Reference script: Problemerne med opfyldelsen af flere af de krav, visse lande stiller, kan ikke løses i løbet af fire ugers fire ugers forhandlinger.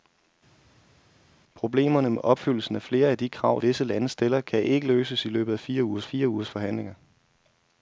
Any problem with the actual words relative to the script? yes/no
no